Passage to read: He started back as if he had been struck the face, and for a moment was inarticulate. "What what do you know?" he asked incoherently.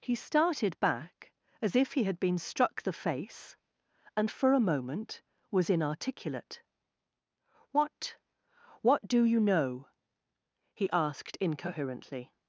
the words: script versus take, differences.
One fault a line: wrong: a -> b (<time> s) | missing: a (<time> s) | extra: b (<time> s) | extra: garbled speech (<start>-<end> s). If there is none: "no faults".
no faults